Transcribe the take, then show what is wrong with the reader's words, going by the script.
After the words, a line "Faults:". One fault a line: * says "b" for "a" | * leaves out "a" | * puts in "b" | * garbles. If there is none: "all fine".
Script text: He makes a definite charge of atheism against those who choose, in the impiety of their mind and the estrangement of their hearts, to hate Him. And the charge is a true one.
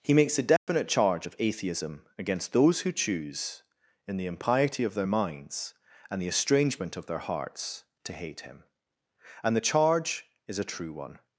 He makes a definite charge of atheism against those who choose, in the impiety of their minds and the estrangement of their hearts, to hate Him. And the charge is a true one.
Faults:
* says "minds" for "mind"